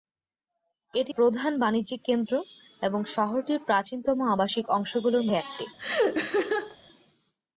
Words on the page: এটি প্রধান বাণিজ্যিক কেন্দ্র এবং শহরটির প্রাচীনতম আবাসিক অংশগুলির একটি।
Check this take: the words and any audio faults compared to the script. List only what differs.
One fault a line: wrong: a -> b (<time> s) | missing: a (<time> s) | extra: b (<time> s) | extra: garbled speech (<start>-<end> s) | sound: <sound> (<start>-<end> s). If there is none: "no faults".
sound: laugh (5.8-6.8 s)